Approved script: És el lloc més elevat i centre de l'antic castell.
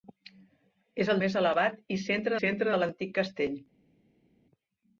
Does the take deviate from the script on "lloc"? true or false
true